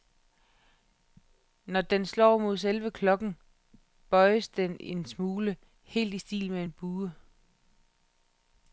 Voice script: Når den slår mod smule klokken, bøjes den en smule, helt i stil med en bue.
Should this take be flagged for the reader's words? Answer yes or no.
yes